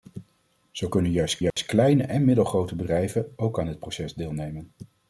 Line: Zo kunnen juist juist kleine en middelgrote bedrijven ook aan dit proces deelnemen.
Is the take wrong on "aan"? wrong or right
right